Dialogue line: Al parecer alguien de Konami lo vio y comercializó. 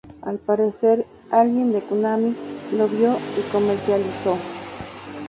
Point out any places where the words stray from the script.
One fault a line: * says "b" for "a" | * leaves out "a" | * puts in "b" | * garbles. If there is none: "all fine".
all fine